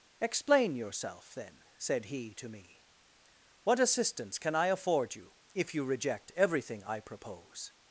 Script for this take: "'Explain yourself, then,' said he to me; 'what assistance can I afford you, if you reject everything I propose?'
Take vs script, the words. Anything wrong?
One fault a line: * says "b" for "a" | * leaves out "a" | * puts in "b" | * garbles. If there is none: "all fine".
all fine